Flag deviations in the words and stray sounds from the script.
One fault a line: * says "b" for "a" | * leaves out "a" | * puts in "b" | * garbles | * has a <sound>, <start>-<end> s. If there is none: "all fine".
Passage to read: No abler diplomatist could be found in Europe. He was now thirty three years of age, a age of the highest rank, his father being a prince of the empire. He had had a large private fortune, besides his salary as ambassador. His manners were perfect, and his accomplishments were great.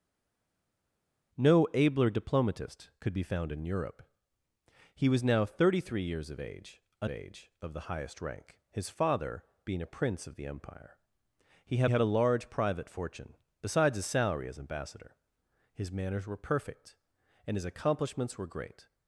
all fine